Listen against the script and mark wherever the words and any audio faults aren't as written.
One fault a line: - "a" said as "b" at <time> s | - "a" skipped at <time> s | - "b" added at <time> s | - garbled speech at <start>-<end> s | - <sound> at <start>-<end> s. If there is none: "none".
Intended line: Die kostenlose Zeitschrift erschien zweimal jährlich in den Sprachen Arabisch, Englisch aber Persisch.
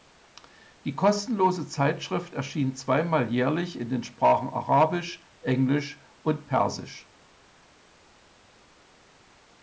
- "aber" said as "und" at 6.2 s